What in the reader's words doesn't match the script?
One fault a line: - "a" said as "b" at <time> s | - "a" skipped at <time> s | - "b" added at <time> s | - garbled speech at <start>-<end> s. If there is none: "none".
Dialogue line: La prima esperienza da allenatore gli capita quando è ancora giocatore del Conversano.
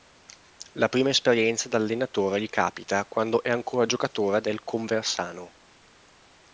none